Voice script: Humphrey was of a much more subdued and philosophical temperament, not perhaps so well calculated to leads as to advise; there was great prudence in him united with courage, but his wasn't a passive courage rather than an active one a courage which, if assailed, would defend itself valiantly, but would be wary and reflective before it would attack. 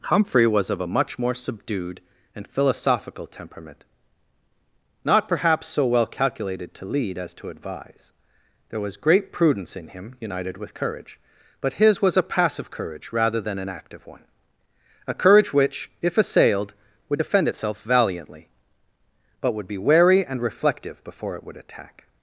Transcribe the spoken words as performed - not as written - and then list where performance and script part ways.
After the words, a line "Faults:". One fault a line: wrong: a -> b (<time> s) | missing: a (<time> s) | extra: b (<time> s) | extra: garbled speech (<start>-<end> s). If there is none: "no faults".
Humphrey was of a much more subdued and philosophical temperament, not perhaps so well calculated to lead as to advise; there was great prudence in him united with courage, but his was a passive courage rather than an active one a courage which, if assailed, would defend itself valiantly, but would be wary and reflective before it would attack.
Faults:
wrong: leads -> lead (6.8 s)
wrong: wasn't -> was (12.0 s)